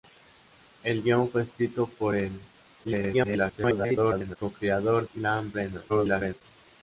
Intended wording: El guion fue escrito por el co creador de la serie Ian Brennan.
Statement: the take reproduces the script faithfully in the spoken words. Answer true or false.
false